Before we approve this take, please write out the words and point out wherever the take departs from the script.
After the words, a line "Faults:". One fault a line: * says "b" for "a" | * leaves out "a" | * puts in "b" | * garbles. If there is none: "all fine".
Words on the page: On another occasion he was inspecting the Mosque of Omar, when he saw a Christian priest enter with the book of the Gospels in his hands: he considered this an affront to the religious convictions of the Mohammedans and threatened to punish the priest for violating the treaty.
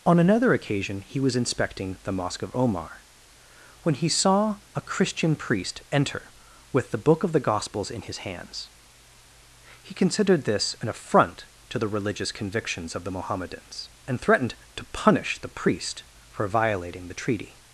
On another occasion he was inspecting the Mosque of Omar, when he saw a Christian priest enter with the book of the Gospels in his hands: he considered this an affront to the religious convictions of the Mohammedans and threatened to punish the priest for violating the treaty.
Faults:
all fine